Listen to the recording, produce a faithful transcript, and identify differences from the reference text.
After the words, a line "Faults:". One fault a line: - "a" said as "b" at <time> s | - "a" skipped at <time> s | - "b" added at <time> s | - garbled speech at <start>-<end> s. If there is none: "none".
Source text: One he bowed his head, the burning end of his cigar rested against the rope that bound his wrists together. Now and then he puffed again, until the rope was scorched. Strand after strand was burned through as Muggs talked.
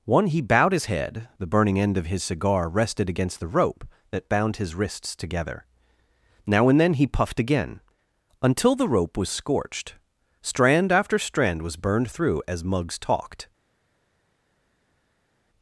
One he bowed his head, the burning end of his cigar rested against the rope that bound his wrists together. Now and then he puffed again, until the rope was scorched. Strand after strand was burned through as Muggs talked.
Faults:
none